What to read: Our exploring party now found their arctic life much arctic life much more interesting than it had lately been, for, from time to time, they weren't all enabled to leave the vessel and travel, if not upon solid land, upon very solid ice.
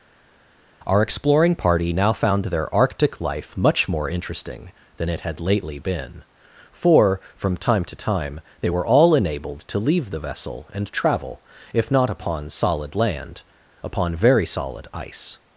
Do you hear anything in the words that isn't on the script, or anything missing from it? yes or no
yes